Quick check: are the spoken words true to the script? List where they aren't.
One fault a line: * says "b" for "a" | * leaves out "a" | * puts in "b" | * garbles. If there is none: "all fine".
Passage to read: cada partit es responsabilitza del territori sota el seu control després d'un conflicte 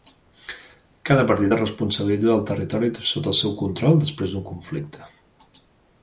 all fine